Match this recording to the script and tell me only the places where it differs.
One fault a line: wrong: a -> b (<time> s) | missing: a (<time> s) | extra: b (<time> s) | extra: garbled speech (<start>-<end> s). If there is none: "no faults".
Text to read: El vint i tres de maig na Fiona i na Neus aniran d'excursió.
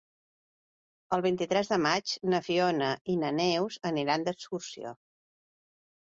no faults